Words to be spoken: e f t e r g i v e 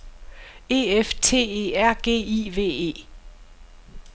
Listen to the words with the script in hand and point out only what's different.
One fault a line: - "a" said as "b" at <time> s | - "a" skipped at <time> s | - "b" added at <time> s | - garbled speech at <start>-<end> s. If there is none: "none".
none